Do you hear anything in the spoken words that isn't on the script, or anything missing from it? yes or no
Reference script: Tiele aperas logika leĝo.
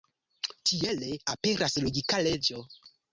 no